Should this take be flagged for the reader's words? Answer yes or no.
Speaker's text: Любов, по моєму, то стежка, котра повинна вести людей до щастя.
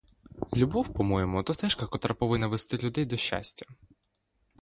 no